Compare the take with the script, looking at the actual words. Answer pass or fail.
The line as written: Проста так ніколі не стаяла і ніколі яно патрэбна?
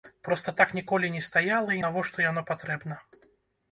fail